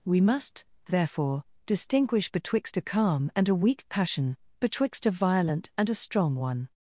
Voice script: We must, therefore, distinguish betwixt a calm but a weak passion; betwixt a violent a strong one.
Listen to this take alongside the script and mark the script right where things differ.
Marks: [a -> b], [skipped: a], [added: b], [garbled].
We must, therefore, distinguish betwixt a calm [but -> and] a weak passion; betwixt a violent [added: and] a strong one.